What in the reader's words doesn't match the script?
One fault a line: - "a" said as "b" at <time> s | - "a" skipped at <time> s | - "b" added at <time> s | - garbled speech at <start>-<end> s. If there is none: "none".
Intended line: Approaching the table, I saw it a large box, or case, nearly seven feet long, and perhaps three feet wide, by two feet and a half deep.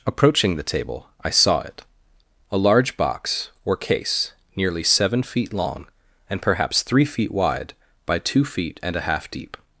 none